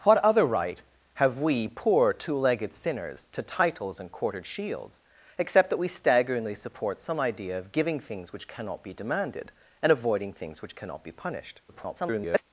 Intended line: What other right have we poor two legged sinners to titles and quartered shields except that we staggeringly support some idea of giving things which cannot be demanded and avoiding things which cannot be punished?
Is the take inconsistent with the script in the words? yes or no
yes